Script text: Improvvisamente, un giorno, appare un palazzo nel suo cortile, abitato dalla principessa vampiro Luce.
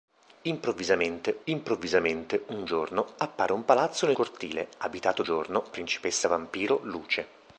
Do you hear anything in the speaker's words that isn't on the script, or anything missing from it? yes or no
yes